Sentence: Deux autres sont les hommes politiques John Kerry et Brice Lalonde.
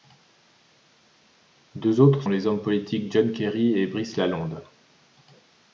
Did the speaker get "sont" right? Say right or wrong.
wrong